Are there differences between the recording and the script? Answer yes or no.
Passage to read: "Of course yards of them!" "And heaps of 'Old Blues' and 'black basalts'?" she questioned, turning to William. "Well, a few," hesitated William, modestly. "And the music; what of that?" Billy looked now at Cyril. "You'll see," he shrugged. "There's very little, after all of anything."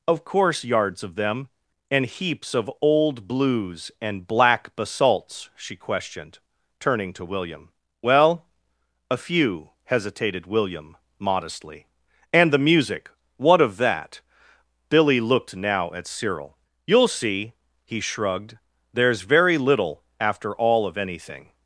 no